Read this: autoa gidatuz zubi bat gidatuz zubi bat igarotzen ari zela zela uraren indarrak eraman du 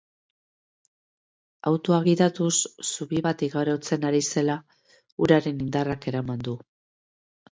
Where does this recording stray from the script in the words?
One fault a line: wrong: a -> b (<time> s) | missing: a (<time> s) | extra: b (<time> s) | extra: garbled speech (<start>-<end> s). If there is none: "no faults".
missing: gidatuz zubi bat (3.4 s)
missing: zela (4.6 s)